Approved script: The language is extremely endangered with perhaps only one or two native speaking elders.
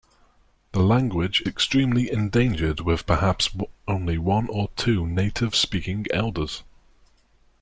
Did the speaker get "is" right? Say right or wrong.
wrong